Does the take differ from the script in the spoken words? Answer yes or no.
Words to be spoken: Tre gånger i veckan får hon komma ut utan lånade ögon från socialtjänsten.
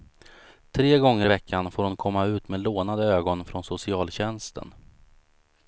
yes